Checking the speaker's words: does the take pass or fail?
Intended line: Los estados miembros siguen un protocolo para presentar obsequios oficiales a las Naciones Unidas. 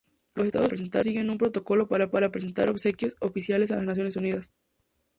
fail